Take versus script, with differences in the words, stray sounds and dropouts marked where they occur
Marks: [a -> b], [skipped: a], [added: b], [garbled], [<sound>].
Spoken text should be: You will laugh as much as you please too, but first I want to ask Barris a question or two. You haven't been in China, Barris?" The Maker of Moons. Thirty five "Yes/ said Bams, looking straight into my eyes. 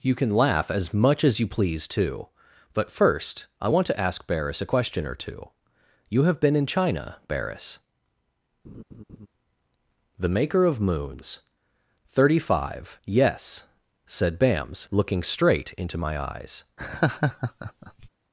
You [will -> can] laugh as much as you please too, but first I want to ask Barris a question or two. You [haven't -> have] been in China, Barris?" [laugh] The Maker of Moons. Thirty five "Yes/ said Bams, looking straight into my eyes. [laugh]